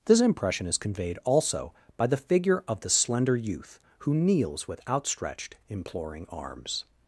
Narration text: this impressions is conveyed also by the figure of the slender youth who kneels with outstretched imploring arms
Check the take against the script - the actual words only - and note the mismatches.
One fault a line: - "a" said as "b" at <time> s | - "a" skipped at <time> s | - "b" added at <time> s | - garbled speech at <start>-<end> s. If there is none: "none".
- "impressions" said as "impression" at 0.2 s